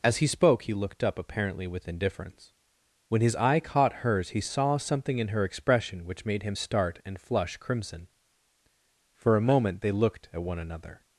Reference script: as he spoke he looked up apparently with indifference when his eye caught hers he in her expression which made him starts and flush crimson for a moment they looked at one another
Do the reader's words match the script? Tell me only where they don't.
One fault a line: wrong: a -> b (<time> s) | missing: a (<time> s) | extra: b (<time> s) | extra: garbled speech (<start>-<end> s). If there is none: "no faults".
extra: saw something (4.4 s)
wrong: starts -> start (6.5 s)